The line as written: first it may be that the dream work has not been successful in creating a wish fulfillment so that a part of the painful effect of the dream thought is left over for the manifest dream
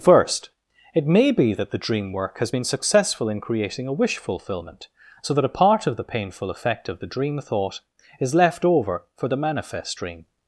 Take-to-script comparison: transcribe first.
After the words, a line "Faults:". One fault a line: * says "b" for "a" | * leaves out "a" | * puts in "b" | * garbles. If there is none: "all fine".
first it may be that the dream work has been successful in creating a wish fulfillment so that a part of the painful effect of the dream thought is left over for the manifest dream
Faults:
* leaves out "not"